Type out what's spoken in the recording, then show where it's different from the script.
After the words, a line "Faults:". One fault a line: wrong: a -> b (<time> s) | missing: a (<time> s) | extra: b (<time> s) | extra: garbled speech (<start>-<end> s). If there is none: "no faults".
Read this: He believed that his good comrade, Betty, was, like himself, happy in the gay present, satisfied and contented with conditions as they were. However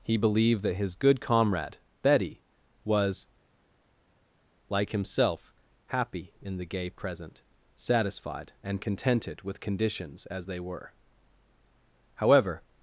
He believed that his good comrade, Betty, was, like himself, happy in the gay present, satisfied and contented with conditions as they were. However
Faults:
no faults